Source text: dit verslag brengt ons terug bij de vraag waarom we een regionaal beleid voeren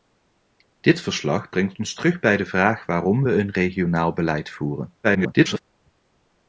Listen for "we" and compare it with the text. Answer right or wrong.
right